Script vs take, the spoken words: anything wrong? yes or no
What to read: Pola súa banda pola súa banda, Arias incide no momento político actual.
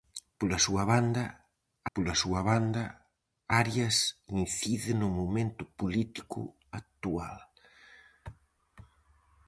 no